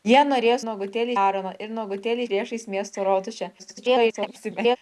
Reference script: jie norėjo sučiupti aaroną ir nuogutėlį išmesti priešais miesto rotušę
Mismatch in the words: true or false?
true